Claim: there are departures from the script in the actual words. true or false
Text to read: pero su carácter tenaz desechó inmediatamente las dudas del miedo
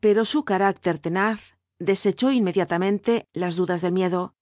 false